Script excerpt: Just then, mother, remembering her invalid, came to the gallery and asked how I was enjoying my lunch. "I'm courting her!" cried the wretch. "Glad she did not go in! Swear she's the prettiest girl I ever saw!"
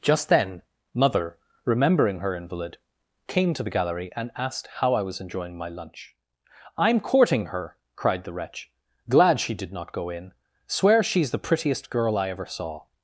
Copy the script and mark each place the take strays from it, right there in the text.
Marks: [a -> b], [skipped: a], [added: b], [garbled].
Just then, mother, remembering her invalid, came to the gallery and asked how I was enjoying my lunch. "I'm courting her!" cried the wretch. "Glad she did not go in! Swear she's the prettiest girl I ever saw!"